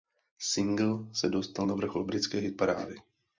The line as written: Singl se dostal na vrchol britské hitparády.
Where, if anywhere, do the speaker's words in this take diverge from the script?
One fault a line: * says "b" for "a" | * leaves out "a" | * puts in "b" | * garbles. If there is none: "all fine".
all fine